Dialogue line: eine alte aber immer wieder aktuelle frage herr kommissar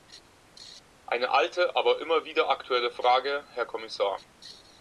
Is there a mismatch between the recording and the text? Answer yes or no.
no